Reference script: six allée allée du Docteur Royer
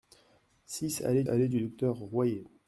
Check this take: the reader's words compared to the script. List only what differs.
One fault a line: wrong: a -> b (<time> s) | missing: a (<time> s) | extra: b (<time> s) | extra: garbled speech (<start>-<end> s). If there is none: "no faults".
no faults